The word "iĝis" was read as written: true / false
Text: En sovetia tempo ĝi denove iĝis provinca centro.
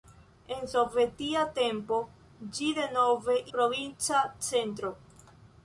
false